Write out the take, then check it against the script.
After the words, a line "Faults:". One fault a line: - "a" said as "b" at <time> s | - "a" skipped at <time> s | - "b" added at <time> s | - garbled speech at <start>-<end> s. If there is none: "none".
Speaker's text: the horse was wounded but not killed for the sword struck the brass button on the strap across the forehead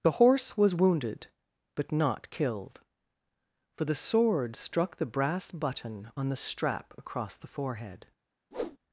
the horse was wounded but not killed for the sword struck the brass button on the strap across the forehead
Faults:
none